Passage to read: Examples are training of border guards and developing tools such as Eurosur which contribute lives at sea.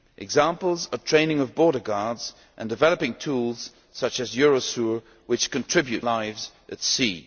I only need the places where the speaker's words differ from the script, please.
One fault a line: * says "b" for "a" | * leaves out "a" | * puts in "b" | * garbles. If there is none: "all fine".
all fine